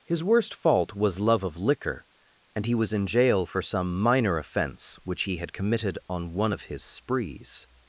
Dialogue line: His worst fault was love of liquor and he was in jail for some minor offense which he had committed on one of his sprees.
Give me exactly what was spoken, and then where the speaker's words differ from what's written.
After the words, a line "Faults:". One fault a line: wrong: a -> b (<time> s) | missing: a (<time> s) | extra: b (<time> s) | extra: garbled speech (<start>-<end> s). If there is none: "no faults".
His worst fault was love of liquor and he was in jail for some minor offense which he had committed on one of his sprees.
Faults:
no faults